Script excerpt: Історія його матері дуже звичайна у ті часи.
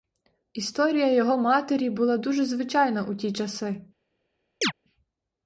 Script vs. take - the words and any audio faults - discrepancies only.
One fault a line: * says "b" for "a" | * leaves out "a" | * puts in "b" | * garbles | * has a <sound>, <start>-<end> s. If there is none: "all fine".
* puts in "була"
* has a chirp, 4.6-4.7 s